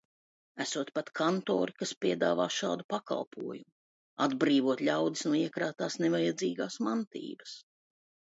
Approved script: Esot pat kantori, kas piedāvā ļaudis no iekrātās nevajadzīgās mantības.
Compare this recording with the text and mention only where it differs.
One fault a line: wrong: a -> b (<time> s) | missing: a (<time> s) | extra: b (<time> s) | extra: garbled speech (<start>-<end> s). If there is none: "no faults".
extra: šādu pakalpojumu atbrīvot (2.5 s)